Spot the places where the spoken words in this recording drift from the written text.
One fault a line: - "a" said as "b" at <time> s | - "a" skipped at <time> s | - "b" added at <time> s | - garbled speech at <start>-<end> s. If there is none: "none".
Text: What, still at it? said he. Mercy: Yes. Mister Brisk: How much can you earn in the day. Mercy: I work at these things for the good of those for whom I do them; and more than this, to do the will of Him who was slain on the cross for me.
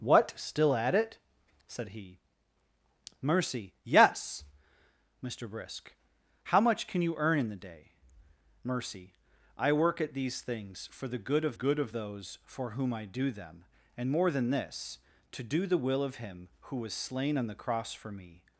- "good of" added at 11.5 s